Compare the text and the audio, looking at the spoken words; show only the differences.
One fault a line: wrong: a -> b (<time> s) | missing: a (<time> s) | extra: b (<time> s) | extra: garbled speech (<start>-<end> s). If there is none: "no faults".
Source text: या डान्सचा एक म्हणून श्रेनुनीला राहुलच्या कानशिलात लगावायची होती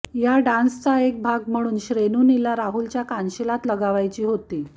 extra: भाग (1.2 s)